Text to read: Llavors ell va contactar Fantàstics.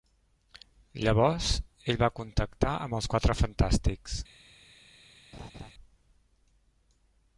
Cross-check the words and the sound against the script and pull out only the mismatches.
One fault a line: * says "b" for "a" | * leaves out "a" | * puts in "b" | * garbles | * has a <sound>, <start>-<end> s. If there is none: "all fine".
* puts in "amb els Quatre"
* has a laugh, 5.3-5.7 s